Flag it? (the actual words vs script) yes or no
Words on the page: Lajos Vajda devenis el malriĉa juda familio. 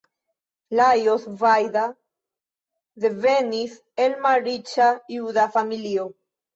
no